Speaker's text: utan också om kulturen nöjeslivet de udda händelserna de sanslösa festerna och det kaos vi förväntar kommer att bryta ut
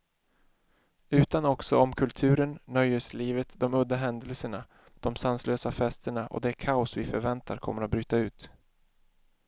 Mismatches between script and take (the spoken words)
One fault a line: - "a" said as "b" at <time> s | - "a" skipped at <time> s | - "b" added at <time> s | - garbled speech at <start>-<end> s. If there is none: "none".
none